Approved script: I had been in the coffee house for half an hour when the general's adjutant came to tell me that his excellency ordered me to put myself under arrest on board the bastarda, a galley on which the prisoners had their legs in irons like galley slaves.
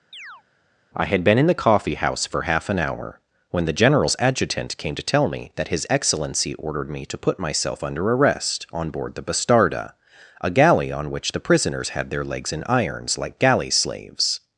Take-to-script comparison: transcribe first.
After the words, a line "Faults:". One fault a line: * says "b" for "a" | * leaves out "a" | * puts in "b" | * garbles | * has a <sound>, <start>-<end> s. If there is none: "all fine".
I had been in the coffee house for half an hour when the general's adjutant came to tell me that his excellency ordered me to put myself under arrest on board the bastarda, a galley on which the prisoners had their legs in irons like galley slaves.
Faults:
* has a chirp, 0.1-0.4 s